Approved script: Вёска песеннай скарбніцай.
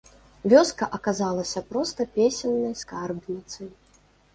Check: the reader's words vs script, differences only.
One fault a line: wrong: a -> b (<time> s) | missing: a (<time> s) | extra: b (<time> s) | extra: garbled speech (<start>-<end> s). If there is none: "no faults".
extra: аказалася проста (1.0 s)